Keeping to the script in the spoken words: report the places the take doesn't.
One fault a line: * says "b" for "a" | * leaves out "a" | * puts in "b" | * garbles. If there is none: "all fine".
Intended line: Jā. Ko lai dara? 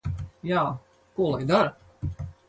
all fine